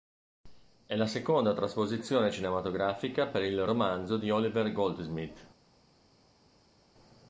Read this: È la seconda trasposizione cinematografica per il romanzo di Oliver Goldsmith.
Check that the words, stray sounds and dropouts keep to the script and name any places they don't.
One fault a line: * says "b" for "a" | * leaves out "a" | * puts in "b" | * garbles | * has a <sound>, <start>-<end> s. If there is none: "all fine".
all fine